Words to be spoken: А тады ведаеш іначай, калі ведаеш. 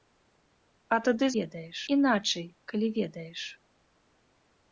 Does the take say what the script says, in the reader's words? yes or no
yes